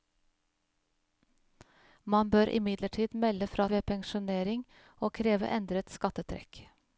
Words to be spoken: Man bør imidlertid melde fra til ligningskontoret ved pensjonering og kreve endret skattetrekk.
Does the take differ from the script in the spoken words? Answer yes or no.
yes